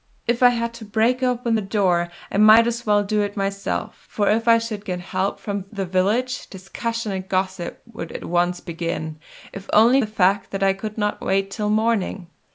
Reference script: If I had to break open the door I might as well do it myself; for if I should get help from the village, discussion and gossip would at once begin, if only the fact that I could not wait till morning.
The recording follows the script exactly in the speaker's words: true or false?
true